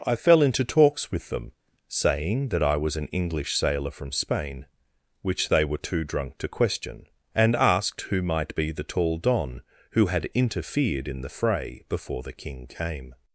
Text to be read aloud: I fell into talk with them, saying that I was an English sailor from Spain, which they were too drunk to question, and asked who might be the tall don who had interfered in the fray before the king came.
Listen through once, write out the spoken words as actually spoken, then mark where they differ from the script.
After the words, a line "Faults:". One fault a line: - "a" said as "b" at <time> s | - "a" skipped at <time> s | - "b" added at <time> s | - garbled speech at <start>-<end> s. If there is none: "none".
I fell into talks with them, saying that I was an English sailor from Spain, which they were too drunk to question, and asked who might be the tall don who had interfered in the fray before the king came.
Faults:
- "talk" said as "talks" at 0.7 s